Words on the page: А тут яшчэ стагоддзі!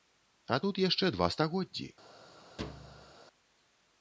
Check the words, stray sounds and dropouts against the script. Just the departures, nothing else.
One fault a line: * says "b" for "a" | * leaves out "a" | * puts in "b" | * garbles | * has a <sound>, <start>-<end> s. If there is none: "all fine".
* puts in "два"
* has a thud, 2.6-3.1 s